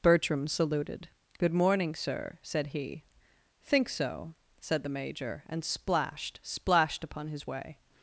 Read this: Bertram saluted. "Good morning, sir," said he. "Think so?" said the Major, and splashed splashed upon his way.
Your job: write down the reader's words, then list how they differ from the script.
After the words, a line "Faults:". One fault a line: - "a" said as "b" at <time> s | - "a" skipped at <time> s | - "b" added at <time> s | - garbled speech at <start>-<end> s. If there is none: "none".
Bertram saluted. "Good morning, sir," said he. "Think so?" said the Major, and splashed splashed upon his way.
Faults:
none